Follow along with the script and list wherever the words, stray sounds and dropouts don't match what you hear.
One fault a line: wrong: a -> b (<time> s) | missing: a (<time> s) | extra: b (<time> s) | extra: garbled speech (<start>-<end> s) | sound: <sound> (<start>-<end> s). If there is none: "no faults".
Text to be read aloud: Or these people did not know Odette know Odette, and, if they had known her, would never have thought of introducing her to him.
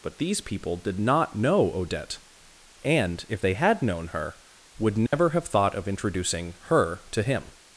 wrong: Or -> But (0.0 s)
missing: know Odette (2.2 s)
sound: dropout (5.1-5.1 s)